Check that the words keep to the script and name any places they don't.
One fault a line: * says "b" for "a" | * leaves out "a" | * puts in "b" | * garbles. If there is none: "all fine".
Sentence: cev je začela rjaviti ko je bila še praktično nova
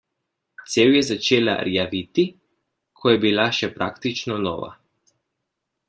all fine